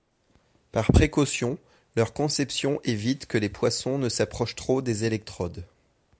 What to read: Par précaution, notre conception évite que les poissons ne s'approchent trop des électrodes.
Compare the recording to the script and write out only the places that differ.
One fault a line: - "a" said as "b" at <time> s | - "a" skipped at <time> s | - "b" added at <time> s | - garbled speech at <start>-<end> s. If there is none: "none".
- "notre" said as "leur" at 2.0 s